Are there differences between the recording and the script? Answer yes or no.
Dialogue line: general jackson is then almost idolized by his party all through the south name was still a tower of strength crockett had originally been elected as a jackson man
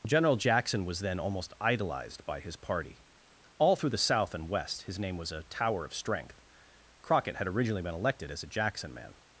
yes